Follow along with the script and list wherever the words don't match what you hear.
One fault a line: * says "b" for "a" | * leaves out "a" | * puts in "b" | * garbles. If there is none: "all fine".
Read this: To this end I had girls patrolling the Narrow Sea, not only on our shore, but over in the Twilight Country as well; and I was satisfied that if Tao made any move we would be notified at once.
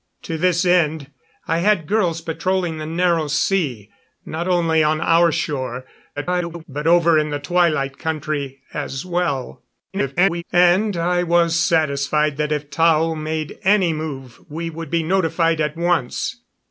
* garbles
* garbles